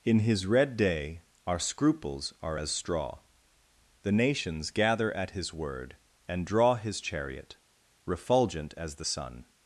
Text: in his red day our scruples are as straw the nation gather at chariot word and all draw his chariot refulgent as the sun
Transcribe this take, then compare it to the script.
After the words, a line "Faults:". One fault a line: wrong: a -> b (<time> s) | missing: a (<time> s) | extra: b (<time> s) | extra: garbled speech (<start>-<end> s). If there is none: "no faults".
in his red day our scruples are as straw the nations gather at his word and draw his chariot refulgent as the sun
Faults:
wrong: nation -> nations (4.1 s)
wrong: chariot -> his (5.3 s)
missing: all (6.4 s)